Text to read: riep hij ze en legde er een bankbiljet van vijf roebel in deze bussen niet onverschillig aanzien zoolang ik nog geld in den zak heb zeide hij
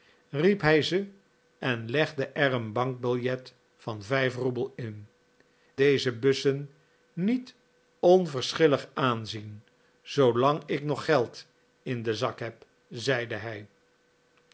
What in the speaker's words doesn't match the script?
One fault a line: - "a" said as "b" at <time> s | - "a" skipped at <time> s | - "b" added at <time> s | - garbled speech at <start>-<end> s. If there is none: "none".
none